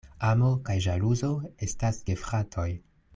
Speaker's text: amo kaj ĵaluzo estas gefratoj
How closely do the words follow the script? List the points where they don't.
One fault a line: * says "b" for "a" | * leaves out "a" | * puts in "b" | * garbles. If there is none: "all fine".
all fine